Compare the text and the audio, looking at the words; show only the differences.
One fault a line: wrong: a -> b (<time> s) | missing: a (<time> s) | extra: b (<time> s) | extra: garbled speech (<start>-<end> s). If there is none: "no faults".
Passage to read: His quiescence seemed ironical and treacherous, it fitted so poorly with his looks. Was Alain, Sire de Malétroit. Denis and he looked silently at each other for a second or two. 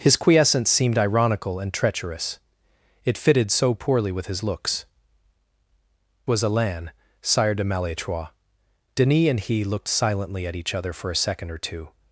no faults